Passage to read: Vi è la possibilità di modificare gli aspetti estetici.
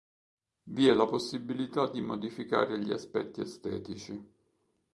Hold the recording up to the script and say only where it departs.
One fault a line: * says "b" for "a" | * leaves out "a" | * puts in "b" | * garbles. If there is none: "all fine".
all fine